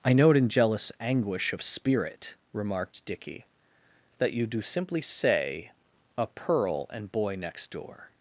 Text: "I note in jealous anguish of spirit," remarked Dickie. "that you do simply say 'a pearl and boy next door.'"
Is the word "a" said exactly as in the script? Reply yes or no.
yes